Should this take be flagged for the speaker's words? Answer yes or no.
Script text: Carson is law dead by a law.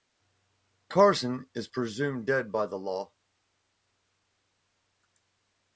yes